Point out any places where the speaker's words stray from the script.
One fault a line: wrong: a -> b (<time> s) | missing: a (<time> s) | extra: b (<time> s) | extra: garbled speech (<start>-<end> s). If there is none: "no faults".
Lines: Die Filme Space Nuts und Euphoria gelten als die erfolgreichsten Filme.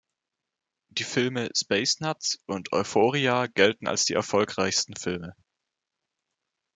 no faults